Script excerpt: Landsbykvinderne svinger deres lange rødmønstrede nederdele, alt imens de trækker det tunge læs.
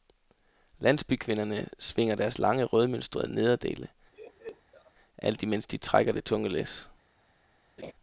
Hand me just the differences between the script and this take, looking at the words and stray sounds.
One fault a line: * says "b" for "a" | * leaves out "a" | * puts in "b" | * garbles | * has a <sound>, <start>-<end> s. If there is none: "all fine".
* has a laugh, 4.1-4.9 s
* has a laugh, 7.8-7.9 s